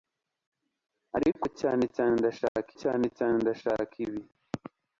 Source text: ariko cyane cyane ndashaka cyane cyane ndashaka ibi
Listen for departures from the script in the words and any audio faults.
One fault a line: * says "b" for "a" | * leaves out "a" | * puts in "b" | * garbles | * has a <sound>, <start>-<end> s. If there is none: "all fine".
* has a dropout, 2.5-2.6 s